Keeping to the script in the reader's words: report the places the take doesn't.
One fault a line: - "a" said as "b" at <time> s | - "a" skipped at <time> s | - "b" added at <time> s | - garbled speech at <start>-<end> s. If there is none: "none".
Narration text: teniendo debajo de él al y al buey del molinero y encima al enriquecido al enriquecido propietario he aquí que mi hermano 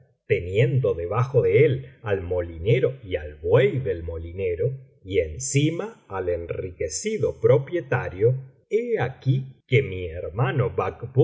- "molinero" added at 2.2 s
- "al enriquecido" skipped at 7.4 s